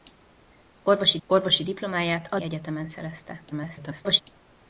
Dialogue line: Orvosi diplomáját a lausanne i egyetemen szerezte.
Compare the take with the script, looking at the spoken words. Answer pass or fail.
fail